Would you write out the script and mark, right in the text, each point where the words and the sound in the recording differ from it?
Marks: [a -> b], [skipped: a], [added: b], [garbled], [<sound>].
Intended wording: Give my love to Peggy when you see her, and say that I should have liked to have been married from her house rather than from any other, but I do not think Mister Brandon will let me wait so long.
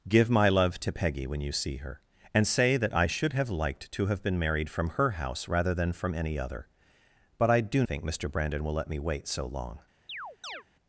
Give my love to Peggy when you see her, and say that I should have liked to have been married from her house rather than from any other, but I do [skipped: not] think Mister Brandon will let me wait so long. [chirp]